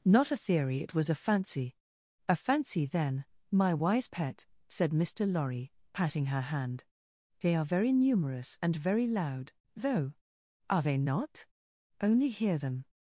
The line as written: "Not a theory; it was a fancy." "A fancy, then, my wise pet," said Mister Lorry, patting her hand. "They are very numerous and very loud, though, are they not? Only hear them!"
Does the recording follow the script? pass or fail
pass